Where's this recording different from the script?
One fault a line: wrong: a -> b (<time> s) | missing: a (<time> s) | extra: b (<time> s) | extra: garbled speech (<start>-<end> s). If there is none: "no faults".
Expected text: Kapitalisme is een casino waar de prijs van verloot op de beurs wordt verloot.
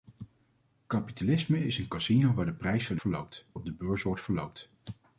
no faults